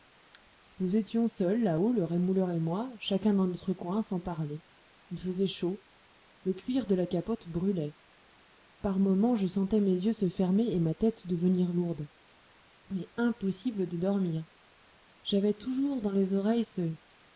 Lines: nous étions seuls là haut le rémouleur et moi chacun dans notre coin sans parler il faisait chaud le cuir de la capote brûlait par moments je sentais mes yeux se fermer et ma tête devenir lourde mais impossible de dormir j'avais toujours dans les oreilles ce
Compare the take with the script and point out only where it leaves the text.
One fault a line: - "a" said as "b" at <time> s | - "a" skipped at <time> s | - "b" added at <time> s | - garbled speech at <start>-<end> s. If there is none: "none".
none